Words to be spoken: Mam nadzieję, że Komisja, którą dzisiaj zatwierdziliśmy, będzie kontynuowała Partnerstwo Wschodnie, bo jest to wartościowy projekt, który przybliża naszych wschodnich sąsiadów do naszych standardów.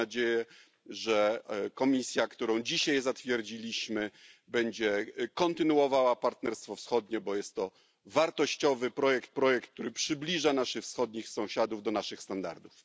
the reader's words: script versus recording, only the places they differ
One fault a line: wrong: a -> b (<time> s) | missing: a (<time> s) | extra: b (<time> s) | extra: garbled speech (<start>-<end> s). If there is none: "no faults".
extra: projekt (9.3 s)